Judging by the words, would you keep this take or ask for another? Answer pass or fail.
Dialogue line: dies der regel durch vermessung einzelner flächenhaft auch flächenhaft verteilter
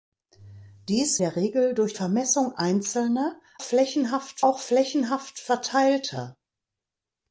pass